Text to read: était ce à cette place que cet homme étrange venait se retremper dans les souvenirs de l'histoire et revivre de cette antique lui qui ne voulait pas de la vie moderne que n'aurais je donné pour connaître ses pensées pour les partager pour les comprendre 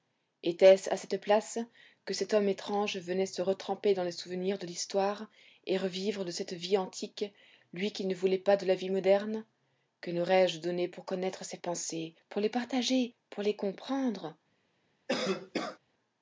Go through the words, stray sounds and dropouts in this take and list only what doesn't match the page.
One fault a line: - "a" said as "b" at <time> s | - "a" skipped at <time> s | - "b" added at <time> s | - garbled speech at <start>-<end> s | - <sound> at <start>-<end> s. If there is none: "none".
- "vie" added at 6.5 s
- cough at 15.1-15.8 s